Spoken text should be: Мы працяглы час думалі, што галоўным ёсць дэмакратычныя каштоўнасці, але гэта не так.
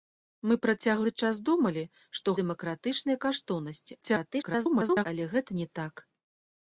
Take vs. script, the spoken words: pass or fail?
fail